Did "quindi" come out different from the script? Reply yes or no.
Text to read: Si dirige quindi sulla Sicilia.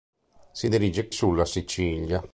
yes